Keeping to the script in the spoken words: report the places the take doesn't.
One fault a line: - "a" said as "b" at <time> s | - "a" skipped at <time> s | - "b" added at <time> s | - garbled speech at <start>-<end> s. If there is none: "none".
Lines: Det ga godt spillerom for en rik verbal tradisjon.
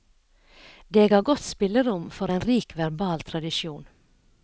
none